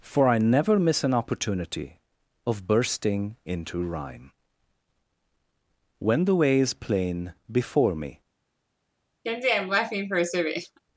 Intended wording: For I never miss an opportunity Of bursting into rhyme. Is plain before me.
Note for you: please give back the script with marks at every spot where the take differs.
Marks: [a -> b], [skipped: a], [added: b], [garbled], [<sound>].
For I never miss an opportunity Of bursting into rhyme. [added: When the way] Is plain before me. [laugh]